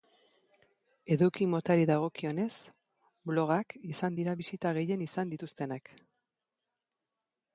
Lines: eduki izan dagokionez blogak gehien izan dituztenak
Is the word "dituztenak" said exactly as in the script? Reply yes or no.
yes